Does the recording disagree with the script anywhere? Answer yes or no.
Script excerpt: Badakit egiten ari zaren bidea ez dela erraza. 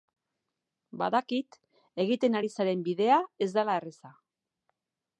no